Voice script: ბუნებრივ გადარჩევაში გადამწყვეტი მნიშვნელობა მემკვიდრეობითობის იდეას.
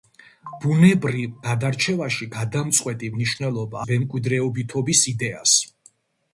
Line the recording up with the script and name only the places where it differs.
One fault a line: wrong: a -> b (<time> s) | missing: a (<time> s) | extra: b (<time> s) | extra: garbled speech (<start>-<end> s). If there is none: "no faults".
no faults